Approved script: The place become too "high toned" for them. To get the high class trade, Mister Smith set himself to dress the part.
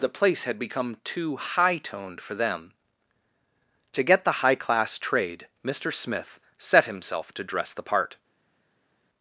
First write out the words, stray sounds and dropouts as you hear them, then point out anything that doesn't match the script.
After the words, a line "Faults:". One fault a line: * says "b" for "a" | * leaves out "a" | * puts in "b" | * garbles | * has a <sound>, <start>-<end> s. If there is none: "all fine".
The place had become too "high toned" for them. To get the high class trade, Mister Smith set himself to dress the part.
Faults:
* puts in "had"